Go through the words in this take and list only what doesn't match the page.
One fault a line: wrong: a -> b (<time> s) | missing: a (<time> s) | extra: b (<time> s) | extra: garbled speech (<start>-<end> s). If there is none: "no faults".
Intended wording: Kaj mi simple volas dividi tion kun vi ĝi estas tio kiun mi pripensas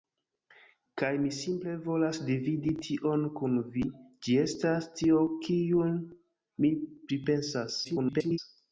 extra: garbled speech (7.8-8.4 s)